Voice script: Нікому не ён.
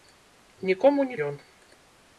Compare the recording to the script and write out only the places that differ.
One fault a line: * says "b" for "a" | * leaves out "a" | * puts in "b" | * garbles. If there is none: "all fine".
all fine